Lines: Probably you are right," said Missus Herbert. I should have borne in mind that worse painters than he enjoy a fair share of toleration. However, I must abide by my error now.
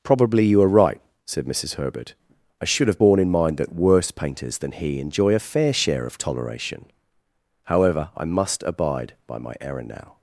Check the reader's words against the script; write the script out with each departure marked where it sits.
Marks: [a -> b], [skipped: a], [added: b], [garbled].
Probably you are right," said Missus Herbert. I should have borne in mind that worse painters than he enjoy a fair share of toleration. However, I must abide by my error now.